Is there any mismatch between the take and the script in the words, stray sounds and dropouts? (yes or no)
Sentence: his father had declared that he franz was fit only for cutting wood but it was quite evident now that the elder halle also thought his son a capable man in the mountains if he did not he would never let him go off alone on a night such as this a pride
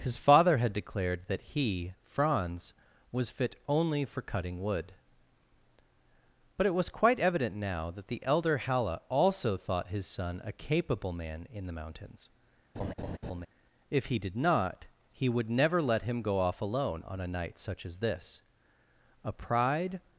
yes